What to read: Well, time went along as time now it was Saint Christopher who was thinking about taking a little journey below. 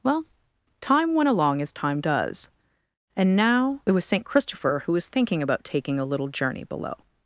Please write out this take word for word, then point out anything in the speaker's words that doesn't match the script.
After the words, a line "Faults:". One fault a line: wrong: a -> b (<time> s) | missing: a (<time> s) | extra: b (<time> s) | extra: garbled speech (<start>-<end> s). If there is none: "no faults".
Well, time went along as time does, and now it was Saint Christopher who was thinking about taking a little journey below.
Faults:
extra: does and (2.0 s)